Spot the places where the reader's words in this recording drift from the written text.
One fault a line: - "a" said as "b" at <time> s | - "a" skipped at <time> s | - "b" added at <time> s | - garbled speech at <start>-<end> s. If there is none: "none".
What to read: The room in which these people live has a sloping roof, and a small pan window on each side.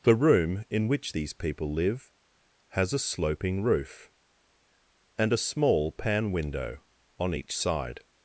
none